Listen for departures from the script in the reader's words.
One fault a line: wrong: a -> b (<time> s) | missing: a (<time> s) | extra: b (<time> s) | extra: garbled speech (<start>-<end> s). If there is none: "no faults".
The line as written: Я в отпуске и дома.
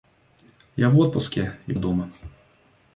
no faults